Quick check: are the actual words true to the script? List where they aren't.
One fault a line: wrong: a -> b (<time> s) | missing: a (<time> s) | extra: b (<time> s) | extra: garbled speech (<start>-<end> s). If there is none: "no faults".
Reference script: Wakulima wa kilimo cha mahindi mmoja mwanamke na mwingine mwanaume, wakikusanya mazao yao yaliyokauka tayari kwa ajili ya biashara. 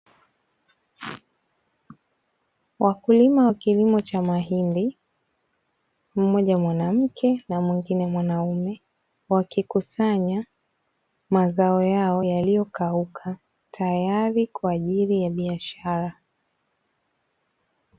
no faults